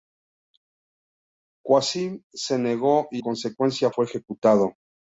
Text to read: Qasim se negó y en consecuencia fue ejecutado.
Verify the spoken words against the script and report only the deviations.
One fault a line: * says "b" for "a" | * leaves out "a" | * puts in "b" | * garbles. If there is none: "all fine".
* leaves out "en"